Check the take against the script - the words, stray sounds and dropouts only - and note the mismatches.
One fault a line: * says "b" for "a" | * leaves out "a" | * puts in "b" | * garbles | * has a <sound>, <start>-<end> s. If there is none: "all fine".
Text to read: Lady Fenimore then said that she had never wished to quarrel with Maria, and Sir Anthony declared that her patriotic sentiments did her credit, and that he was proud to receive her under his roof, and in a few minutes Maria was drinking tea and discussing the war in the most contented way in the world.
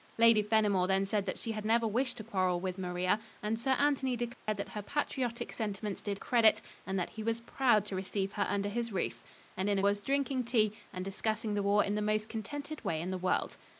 * has a dropout, 4.3-4.5 s
* leaves out "her"
* leaves out "few minutes Maria"